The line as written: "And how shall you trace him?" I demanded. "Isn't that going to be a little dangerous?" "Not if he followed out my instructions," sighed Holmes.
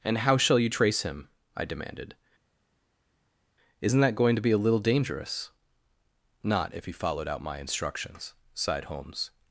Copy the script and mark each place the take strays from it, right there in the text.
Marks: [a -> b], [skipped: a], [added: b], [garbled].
"And how shall you trace him?" I demanded. "Isn't that going to be a little dangerous?" "Not if he followed out my instructions," sighed Holmes.